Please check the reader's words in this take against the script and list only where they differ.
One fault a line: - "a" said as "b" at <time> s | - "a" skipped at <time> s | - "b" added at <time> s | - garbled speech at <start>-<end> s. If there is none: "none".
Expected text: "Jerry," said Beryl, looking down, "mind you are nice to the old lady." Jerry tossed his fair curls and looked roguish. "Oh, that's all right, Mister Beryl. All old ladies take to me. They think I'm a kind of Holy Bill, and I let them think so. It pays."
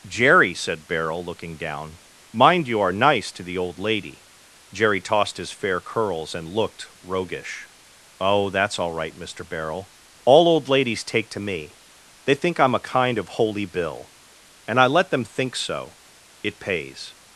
none